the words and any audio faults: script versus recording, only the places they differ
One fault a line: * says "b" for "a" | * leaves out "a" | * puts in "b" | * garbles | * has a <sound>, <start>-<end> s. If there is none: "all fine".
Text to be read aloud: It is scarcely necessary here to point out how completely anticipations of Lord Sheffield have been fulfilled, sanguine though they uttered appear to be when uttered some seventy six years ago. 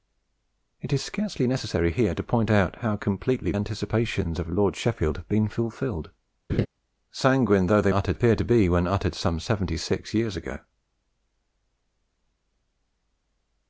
* has a laugh, 6.5-6.7 s